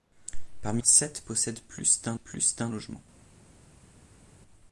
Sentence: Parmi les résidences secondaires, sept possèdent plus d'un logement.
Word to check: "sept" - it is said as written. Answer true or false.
false